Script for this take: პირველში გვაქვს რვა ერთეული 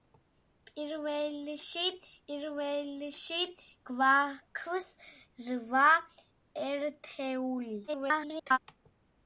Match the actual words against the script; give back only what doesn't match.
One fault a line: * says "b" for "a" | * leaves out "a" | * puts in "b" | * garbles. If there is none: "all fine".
* puts in "პირველში"
* garbles